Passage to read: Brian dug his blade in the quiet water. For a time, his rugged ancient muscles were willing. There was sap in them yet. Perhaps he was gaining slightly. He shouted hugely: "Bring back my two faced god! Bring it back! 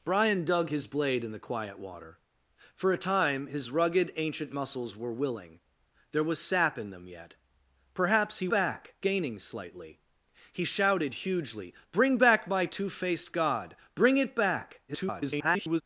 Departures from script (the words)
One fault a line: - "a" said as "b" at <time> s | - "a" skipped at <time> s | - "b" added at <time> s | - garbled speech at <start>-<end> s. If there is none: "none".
- "was" said as "back" at 8.5 s
- garbled speech at 14.9-15.8 s